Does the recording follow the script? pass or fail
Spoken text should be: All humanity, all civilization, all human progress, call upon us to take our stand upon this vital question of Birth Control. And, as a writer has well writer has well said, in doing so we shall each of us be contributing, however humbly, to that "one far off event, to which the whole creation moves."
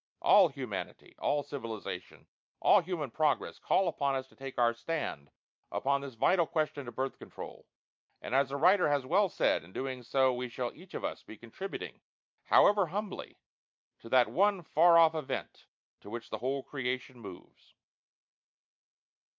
fail